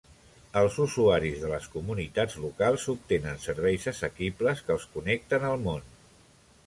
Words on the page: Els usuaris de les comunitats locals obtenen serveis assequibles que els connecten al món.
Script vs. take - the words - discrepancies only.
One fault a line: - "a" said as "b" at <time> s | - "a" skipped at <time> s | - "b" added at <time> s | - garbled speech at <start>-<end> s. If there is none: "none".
none